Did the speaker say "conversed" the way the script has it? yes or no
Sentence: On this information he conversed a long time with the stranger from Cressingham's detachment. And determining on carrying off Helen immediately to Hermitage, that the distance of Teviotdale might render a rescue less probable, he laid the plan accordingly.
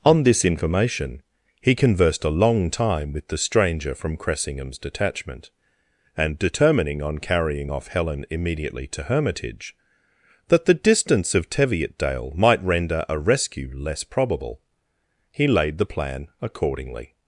yes